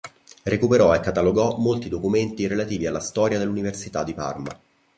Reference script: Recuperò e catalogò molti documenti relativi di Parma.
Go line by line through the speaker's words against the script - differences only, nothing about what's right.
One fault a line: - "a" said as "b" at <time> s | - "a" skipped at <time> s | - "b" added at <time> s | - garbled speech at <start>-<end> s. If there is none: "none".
- "alla storia dell'Università" added at 2.9 s